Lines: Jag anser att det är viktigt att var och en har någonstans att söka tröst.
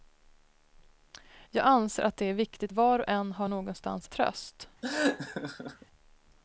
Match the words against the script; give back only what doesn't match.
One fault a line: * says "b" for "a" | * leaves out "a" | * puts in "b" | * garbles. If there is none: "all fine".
* leaves out "att"
* leaves out "att söka"